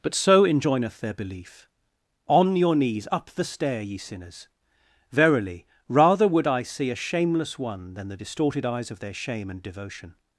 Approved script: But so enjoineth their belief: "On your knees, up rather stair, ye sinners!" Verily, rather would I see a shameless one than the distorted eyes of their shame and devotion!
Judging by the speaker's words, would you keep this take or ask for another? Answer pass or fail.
fail